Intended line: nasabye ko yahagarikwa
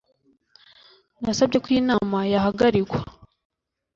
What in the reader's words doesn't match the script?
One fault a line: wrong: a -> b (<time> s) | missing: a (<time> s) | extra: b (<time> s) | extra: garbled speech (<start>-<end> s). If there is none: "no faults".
extra: inama (1.8 s)